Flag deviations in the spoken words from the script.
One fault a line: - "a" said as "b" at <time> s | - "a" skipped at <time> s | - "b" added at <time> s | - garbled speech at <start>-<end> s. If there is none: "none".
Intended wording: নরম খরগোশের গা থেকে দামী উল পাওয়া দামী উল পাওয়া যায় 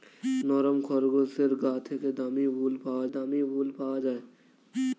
none